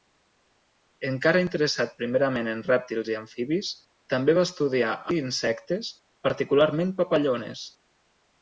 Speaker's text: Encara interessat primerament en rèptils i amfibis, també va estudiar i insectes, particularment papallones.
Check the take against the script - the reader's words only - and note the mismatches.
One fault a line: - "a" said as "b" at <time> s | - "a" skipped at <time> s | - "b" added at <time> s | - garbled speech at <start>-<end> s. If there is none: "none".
none